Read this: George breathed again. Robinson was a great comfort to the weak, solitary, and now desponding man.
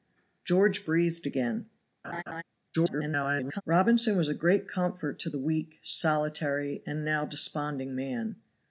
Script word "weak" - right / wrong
right